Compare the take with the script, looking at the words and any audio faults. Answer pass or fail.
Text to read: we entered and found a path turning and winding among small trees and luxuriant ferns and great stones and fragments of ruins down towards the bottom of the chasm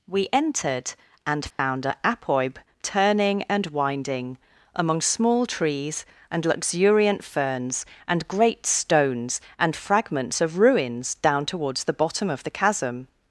fail